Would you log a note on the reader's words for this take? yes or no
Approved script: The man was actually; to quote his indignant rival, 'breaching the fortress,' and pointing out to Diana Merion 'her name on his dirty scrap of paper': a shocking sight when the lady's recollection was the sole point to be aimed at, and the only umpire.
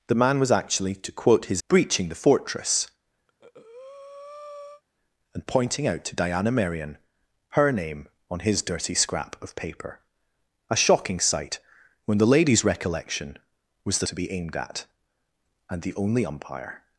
yes